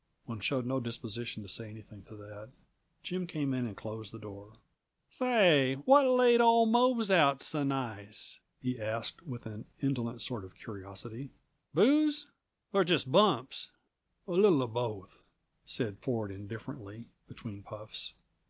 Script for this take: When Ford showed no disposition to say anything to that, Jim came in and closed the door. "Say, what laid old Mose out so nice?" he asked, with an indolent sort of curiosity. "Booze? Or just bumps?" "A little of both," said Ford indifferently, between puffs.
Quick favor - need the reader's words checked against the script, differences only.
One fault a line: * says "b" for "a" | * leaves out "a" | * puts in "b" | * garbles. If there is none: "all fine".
* leaves out "Ford"